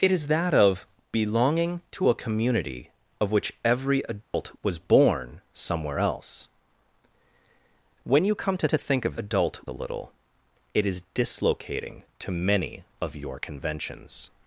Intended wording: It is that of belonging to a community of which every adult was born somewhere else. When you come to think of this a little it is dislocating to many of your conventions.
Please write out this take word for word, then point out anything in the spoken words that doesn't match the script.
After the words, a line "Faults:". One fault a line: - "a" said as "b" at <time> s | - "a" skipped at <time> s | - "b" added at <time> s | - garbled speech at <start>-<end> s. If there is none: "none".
It is that of belonging to a community of which every adult was born somewhere else. When you come to to think of adult a little it is dislocating to many of your conventions.
Faults:
- "to" added at 8.7 s
- "this" said as "adult" at 9.2 s